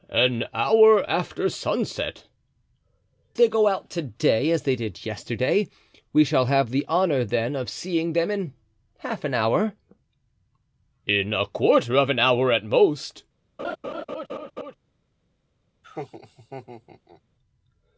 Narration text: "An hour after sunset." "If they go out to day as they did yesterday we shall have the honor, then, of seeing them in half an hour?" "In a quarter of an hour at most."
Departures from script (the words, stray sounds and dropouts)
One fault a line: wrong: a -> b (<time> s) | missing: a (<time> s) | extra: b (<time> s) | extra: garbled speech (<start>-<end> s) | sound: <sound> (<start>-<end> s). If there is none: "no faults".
missing: If (2.2 s)
sound: laugh (13.6-14.7 s)
sound: laugh (15.8-17.2 s)